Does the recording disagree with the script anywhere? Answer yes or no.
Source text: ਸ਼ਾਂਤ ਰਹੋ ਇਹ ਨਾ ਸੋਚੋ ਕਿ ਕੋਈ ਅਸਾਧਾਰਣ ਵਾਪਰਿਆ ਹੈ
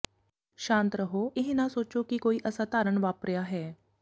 no